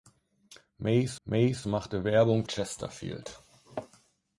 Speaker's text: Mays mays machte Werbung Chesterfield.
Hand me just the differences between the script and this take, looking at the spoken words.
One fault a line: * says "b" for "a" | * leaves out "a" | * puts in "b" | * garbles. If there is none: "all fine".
all fine